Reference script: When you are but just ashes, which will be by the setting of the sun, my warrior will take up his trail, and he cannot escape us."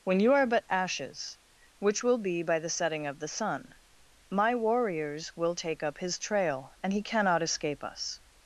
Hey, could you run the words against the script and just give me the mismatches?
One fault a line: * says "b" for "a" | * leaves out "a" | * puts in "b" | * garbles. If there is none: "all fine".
* leaves out "just"
* says "warriors" for "warrior"